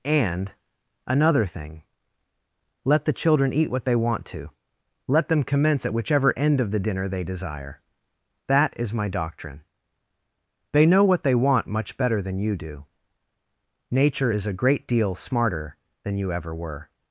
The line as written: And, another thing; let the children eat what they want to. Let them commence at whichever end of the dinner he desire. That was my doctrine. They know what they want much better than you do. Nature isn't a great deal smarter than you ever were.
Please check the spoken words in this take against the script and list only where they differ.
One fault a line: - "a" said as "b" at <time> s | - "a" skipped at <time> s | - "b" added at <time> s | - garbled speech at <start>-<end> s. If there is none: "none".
- "he" said as "they" at 7.1 s
- "was" said as "is" at 8.8 s
- "isn't" said as "is" at 14.3 s